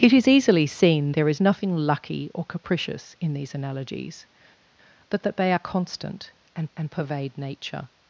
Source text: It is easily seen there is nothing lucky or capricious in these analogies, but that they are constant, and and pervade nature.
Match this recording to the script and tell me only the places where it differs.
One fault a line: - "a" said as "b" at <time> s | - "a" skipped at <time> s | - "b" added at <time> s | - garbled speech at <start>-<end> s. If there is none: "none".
none